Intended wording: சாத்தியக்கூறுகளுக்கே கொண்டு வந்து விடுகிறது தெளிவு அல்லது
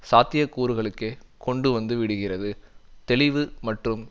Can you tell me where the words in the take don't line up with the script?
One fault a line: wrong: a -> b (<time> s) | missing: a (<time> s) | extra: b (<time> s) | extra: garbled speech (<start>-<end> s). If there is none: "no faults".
wrong: அல்லது -> மற்றும் (3.6 s)